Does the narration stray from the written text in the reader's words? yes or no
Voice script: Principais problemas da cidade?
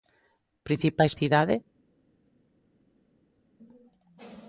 yes